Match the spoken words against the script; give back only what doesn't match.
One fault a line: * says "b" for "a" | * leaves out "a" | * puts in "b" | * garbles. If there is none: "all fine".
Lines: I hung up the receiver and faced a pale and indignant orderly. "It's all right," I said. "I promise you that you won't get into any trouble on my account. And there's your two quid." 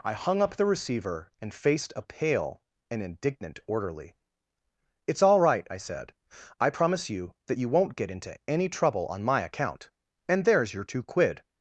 all fine